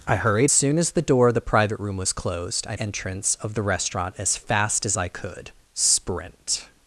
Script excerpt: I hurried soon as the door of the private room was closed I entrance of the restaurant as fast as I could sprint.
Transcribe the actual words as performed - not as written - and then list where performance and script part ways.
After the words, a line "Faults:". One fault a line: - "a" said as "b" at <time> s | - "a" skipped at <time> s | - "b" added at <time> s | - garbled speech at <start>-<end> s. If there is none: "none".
I hurried soon as the door of the private room was closed I entrance of the restaurant as fast as I could sprint.
Faults:
none